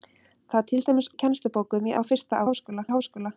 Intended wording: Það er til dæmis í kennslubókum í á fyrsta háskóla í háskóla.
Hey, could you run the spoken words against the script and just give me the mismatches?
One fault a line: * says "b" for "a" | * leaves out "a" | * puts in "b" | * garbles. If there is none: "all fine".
all fine